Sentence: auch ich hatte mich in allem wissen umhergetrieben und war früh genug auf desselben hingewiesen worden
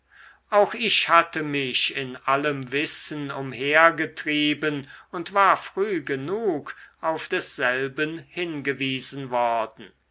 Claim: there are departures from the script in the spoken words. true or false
false